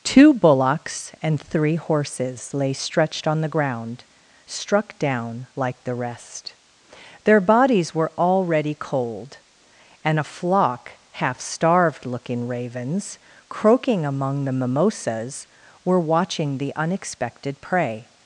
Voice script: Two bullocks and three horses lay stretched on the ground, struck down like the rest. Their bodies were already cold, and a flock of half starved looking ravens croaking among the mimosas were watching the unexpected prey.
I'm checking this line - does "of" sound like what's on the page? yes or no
no